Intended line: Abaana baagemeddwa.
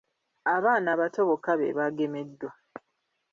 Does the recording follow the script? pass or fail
fail